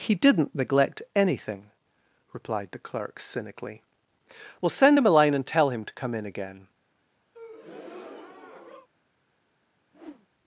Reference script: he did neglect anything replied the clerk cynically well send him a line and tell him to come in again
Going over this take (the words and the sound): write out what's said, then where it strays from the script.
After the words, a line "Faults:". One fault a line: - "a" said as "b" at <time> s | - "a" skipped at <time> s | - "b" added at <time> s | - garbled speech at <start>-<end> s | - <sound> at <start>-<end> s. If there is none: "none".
he didn't neglect anything replied the clerk cynically well send him a line and tell him to come in again
Faults:
- "did" said as "didn't" at 0.1 s
- breath at 7.3-8.9 s
- whoosh at 9.9-10.3 s